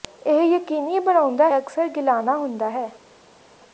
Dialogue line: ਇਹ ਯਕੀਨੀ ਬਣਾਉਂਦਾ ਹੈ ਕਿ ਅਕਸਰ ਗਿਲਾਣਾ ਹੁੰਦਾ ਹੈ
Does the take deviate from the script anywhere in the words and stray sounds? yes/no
yes